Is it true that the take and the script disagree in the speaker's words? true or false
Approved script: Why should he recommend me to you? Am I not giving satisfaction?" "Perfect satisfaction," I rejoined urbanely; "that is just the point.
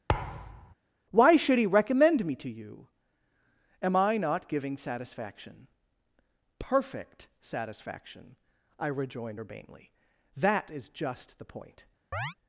false